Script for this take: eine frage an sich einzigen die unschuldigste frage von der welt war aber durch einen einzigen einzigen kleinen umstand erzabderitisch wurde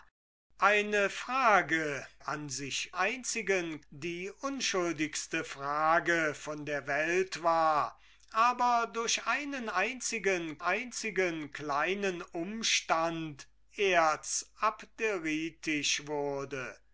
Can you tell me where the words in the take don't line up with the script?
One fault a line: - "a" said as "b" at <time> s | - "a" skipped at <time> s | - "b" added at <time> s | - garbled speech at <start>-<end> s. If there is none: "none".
none